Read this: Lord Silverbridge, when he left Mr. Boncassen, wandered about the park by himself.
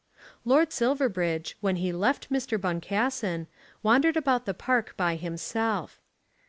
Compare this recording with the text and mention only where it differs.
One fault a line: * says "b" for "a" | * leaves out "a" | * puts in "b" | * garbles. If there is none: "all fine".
all fine